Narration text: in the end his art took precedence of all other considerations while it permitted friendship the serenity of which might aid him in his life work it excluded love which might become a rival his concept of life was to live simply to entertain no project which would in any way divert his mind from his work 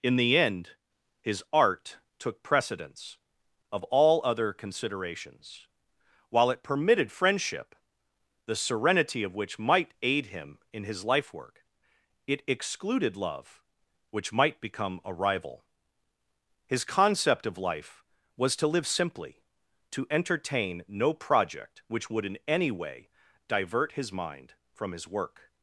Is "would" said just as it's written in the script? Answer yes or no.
yes